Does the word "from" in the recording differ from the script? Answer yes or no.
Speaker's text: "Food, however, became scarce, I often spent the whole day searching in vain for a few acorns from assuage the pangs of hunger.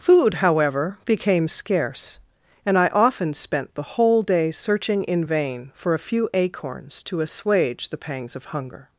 yes